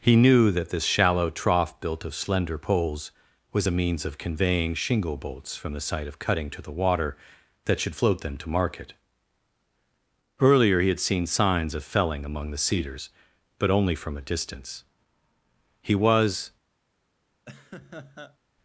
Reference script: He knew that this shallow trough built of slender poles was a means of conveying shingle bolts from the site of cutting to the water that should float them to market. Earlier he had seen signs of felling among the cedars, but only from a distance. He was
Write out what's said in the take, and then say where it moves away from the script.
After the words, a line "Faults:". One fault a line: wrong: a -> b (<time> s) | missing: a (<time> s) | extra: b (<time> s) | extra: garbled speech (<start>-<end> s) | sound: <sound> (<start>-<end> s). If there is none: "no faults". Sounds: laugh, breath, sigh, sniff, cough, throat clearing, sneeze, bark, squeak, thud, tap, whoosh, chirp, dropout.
He knew that this shallow trough built of slender poles was a means of conveying shingle bolts from the site of cutting to the water that should float them to market. Earlier he had seen signs of felling among the cedars, but only from a distance. He was
Faults:
sound: laugh (17.5-18.4 s)